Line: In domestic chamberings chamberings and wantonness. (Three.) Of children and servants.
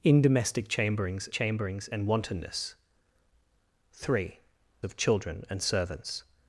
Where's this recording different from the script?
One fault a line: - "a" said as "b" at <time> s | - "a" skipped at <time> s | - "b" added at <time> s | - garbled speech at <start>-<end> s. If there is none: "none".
none